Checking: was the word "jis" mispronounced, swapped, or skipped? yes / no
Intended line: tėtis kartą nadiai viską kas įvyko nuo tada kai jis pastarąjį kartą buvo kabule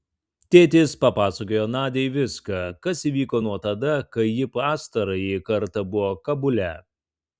yes